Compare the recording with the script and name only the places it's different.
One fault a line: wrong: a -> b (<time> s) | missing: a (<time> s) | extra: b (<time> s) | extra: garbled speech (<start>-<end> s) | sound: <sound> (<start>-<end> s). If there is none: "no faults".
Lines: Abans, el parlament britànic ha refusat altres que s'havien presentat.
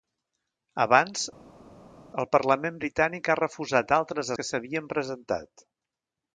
no faults